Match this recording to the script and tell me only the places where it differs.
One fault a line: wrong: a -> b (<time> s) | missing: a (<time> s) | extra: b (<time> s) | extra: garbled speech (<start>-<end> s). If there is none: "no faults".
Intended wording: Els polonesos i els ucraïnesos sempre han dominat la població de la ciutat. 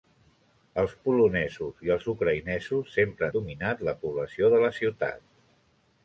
missing: han (3.3 s)